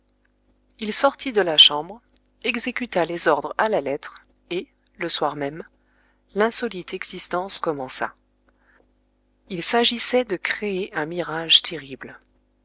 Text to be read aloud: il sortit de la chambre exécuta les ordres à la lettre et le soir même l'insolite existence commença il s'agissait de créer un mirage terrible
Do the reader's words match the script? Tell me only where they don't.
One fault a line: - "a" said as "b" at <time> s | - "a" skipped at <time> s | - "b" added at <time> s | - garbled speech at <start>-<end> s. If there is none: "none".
none